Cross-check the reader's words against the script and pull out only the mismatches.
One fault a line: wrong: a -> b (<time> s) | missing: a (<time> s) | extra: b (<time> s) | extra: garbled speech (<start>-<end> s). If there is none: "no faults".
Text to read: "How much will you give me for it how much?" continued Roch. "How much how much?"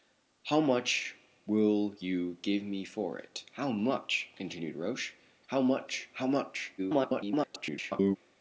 extra: garbled speech (6.8-8.2 s)